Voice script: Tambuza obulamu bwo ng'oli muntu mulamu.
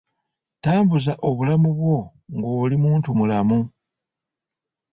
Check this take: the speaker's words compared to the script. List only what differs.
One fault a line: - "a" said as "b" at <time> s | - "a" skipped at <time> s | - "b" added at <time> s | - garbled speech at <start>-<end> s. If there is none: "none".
none